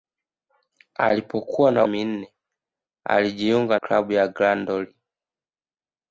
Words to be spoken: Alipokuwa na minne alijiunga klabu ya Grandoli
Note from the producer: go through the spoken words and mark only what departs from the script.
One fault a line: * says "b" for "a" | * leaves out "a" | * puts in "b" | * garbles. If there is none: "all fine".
all fine